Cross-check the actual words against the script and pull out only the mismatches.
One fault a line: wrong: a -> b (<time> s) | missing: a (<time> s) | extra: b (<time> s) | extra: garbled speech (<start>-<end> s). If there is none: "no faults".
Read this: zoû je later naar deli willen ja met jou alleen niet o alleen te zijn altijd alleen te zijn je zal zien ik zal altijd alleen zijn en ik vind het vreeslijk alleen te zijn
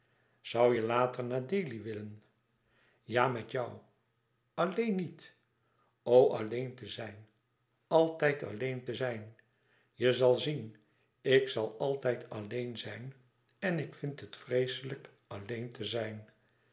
no faults